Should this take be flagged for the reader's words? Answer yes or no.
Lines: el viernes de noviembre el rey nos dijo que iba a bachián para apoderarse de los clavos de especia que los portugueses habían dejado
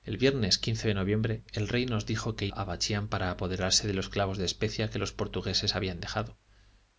yes